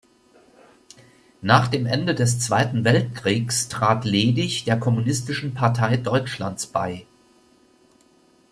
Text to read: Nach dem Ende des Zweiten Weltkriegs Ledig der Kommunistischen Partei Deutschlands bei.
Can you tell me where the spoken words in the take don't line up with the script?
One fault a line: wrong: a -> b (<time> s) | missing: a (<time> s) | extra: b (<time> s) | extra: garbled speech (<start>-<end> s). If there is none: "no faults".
extra: trat (3.7 s)